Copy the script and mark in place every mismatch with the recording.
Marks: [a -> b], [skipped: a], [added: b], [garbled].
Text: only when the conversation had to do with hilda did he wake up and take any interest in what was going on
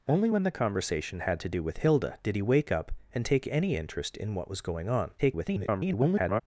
only when the conversation had to do with hilda did he wake up and take any interest in what was going on [garbled]